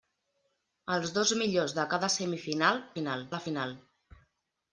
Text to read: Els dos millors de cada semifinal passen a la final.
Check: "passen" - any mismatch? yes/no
yes